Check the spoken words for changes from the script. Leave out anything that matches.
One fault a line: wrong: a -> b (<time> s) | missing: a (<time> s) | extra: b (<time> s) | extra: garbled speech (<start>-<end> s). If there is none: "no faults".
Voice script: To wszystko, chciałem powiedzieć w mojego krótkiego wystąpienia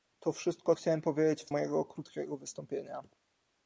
no faults